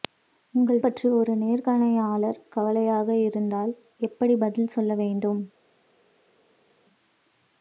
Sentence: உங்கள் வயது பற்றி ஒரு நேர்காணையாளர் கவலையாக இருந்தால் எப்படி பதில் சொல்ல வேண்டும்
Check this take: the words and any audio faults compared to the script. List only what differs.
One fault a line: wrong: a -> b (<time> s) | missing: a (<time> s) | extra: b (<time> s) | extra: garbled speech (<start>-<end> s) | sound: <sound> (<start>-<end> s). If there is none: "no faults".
missing: வயது (0.8 s)